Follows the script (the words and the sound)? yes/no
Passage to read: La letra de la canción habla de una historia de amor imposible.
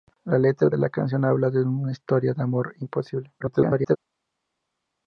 no